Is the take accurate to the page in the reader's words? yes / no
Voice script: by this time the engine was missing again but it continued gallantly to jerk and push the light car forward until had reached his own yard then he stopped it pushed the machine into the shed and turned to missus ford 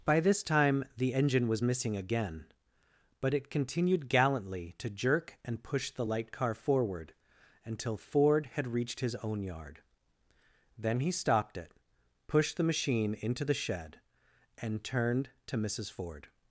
no